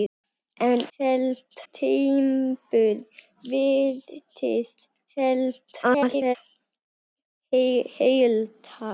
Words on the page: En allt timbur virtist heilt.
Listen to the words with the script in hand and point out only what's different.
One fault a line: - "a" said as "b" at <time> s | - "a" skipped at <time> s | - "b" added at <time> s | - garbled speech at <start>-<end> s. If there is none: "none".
- "allt" said as "heilt" at 1.0 s
- garbled speech at 5.8-6.4 s